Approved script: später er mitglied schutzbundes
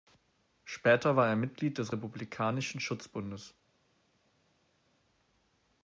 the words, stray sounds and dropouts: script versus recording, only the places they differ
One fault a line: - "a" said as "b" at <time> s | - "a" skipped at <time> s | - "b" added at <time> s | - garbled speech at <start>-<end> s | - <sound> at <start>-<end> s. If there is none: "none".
- "war" added at 1.1 s
- "des republikanischen" added at 1.8 s